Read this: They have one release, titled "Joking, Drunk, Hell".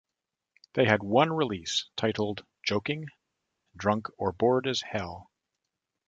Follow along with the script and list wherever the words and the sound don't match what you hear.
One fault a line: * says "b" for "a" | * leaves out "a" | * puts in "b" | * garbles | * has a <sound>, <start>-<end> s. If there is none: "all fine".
* says "had" for "have"
* puts in "or Bored as"